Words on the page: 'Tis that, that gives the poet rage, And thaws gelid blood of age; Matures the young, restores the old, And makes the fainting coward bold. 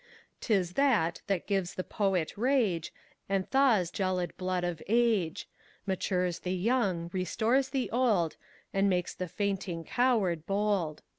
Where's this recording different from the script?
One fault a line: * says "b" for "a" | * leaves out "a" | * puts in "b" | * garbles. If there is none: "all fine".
all fine